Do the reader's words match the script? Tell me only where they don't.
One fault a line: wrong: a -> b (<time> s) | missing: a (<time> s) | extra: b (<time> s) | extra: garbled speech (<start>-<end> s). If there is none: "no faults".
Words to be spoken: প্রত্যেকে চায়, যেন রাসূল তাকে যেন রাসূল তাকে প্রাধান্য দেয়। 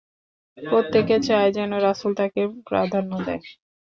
missing: যেন রাসূল তাকে (2.4 s)